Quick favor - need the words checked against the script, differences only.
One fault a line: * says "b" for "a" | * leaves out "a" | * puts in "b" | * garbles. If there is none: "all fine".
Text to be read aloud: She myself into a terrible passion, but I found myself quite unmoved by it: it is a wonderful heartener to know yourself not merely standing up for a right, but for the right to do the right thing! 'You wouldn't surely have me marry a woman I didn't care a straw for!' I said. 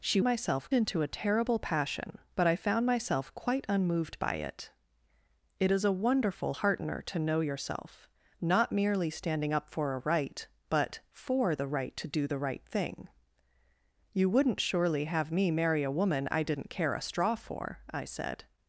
all fine